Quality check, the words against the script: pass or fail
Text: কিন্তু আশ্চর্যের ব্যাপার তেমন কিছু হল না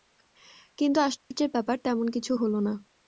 pass